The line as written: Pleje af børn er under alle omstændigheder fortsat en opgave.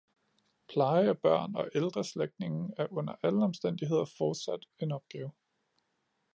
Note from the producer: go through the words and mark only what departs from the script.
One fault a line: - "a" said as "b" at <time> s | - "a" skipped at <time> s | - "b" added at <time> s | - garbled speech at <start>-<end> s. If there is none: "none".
- "og ældre slægtninge" added at 1.6 s